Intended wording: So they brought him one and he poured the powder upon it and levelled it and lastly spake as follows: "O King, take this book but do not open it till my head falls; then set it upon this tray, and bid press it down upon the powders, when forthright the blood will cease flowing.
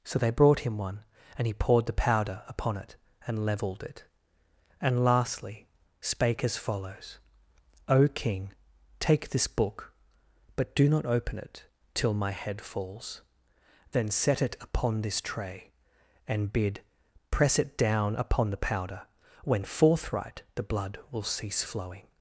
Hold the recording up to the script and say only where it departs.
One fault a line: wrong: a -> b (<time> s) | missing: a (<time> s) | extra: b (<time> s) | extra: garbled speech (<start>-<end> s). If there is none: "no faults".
wrong: powders -> powder (18.6 s)